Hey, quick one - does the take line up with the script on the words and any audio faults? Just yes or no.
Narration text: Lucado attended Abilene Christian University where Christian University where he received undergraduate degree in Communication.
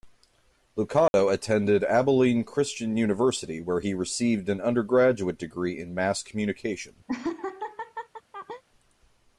no